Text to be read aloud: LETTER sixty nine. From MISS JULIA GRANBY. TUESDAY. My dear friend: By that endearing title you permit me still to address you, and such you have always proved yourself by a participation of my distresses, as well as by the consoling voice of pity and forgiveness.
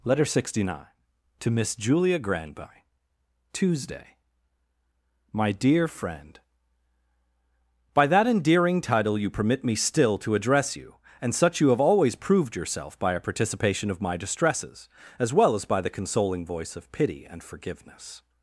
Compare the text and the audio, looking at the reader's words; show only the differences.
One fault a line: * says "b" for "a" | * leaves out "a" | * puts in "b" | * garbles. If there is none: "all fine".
* says "TO" for "From"